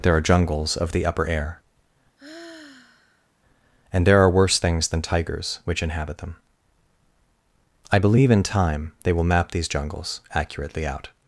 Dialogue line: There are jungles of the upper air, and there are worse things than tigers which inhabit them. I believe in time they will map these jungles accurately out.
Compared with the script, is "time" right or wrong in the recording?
right